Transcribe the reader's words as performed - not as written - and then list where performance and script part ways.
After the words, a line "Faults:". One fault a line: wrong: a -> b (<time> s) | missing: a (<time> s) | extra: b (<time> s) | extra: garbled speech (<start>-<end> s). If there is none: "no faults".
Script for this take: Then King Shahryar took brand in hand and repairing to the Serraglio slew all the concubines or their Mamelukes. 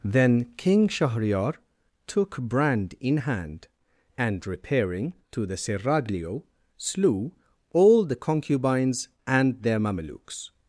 Then King Shahryar took brand in hand and repairing to the Serraglio slew all the concubines and their Mamelukes.
Faults:
wrong: or -> and (9.3 s)